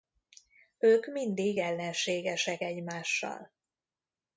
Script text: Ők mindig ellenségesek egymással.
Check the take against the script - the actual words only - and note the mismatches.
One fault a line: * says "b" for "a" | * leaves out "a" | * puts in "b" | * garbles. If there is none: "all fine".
all fine